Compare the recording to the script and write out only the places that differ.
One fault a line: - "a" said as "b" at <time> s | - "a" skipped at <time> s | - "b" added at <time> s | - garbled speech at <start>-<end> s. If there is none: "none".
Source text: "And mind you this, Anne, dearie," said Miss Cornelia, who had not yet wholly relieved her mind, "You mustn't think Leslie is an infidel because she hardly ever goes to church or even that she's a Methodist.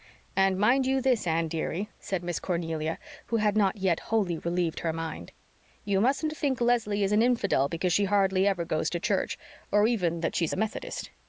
none